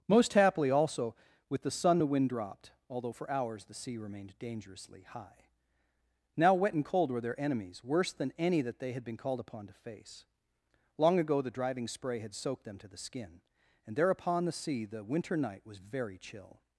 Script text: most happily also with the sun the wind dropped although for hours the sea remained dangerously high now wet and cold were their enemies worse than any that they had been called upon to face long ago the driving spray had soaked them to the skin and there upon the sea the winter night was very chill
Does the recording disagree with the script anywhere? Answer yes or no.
no